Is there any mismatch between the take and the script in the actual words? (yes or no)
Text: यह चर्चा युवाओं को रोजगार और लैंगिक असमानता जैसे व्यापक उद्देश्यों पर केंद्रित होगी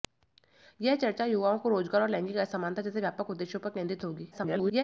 yes